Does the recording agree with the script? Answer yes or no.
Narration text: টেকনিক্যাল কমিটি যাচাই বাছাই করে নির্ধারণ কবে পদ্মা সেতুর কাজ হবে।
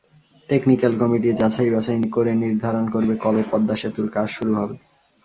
no